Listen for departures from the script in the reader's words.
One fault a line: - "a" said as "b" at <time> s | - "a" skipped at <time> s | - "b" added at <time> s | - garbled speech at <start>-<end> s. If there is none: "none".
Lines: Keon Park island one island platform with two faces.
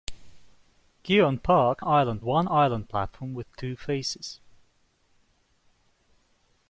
none